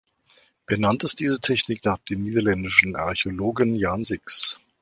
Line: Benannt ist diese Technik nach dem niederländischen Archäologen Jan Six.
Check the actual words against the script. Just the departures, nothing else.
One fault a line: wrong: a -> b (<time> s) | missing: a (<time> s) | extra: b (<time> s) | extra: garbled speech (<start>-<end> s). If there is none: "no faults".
no faults